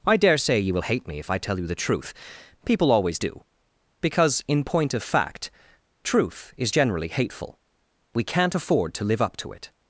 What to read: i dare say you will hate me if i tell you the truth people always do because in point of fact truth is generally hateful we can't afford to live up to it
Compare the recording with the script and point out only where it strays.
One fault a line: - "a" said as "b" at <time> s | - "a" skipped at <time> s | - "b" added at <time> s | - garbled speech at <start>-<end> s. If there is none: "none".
none